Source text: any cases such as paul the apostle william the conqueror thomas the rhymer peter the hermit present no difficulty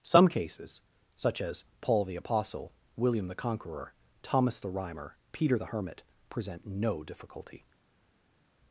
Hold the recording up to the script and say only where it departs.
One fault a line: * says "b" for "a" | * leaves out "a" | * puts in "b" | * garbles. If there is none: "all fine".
* says "some" for "any"